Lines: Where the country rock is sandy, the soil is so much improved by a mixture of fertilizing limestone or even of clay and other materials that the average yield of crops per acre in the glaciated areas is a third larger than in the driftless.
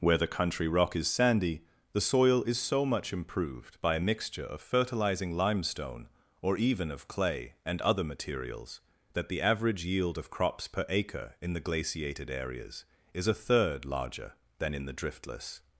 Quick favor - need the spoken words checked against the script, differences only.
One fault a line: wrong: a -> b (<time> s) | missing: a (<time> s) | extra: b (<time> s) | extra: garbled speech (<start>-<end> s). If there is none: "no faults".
no faults